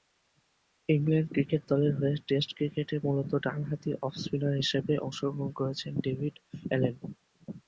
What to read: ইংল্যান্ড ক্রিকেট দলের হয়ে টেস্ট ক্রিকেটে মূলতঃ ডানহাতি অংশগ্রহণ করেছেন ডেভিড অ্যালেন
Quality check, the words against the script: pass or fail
fail